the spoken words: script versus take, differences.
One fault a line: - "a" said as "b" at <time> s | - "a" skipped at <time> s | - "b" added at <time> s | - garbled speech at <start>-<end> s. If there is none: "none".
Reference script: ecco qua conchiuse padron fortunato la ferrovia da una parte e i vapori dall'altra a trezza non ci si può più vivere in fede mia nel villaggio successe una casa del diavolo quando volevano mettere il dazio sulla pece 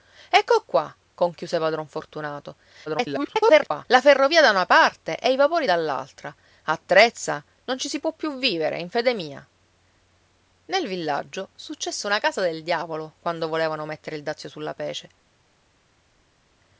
- garbled speech at 2.9-3.9 s